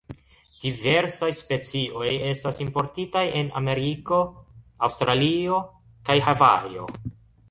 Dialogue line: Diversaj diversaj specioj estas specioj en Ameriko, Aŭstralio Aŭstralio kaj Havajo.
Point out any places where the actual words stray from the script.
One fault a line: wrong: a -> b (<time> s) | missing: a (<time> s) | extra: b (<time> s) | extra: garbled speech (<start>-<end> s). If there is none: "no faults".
missing: diversaj (1.3 s)
wrong: specioj -> importitaj (2.7 s)
missing: Aŭstralio (5.6 s)